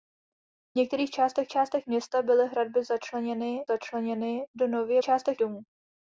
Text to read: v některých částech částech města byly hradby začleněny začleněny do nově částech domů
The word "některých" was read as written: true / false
true